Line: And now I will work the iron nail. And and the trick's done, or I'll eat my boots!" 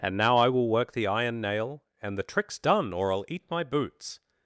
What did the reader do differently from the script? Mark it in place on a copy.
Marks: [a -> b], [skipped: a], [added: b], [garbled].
And now I will work the iron nail. And [skipped: and] the trick's done, or I'll eat my boots!"